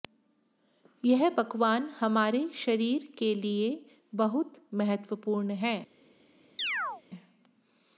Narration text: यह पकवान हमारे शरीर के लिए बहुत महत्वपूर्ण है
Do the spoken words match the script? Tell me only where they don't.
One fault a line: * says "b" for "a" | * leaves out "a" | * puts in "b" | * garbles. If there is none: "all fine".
all fine